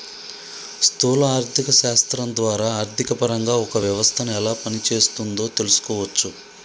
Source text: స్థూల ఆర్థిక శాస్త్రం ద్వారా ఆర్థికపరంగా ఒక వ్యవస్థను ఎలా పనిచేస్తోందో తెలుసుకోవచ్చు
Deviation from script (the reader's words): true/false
false